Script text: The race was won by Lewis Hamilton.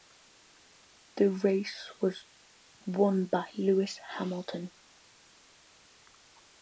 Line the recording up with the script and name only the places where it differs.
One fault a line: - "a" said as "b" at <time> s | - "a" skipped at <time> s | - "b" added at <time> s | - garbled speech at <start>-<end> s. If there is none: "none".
none